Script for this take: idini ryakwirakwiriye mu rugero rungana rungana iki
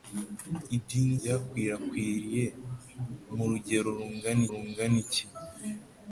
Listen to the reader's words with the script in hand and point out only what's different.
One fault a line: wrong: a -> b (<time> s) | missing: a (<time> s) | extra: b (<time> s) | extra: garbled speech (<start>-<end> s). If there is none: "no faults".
no faults